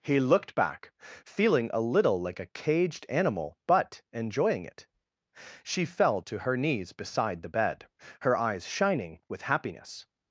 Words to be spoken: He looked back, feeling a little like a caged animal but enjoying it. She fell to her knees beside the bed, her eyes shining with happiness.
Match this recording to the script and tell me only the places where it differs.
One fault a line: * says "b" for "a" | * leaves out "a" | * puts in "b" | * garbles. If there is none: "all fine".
all fine